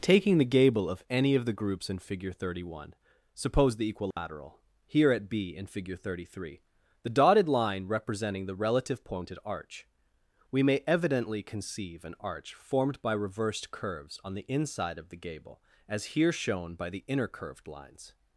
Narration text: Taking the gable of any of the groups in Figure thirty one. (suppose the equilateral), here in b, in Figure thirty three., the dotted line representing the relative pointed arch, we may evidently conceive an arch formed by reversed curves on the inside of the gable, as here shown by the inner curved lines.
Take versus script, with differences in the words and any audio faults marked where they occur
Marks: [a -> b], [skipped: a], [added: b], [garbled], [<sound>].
Taking the gable of any of the groups in Figure thirty one. (suppose the equilateral), [dropout] here [in -> at] b, in Figure thirty three., the dotted line representing the relative pointed arch, we may evidently conceive an arch formed by reversed curves on the inside of the gable, as here shown by the inner curved lines.